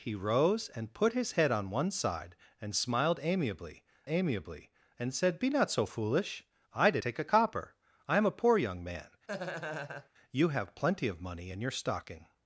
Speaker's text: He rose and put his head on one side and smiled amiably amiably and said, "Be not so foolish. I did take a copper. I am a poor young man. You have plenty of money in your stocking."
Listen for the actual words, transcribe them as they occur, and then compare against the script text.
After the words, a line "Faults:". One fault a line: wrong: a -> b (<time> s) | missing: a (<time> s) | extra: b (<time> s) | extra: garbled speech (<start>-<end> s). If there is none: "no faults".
He rose and put his head on one side and smiled amiably amiably and said, "Be not so foolish. I did take a copper. I am a poor young man. You have plenty of money in your stocking."
Faults:
no faults